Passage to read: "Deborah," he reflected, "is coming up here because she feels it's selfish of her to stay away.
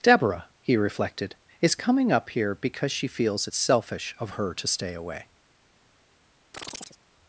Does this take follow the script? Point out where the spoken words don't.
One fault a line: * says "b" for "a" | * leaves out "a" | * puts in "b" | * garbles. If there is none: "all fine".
all fine